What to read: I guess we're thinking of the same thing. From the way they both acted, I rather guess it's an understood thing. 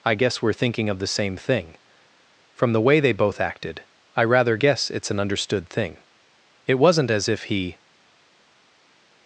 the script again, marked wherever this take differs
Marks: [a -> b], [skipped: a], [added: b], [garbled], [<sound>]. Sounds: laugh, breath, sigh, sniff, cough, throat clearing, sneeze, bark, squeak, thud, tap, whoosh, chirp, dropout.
I guess we're thinking of the same thing. From the way they both acted, I rather guess it's an understood thing. [added: It wasn't as if he]